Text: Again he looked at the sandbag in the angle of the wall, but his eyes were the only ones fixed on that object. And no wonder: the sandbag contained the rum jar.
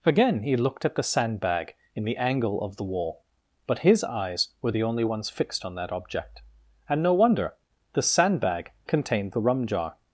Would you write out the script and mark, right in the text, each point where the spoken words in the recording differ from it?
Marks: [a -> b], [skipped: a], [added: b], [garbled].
Again he looked at the sandbag in the angle of the wall, but his eyes were the only ones fixed on that object. And no wonder: the sandbag contained the rum jar.